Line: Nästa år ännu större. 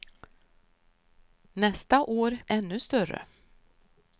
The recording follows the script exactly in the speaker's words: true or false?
true